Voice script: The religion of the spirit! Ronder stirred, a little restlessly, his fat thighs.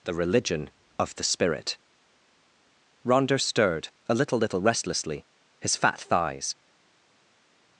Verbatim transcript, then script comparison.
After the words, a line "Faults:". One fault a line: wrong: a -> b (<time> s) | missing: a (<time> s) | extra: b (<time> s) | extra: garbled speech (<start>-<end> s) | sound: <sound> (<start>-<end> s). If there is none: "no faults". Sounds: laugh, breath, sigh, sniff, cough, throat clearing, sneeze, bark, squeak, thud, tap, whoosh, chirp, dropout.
The religion of the spirit! Ronder stirred, a little little restlessly, his fat thighs.
Faults:
extra: little (4.4 s)